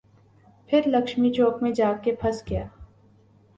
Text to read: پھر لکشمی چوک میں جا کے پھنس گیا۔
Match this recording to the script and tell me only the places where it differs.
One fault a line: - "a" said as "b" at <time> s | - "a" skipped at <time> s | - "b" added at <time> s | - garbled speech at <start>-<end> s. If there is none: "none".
none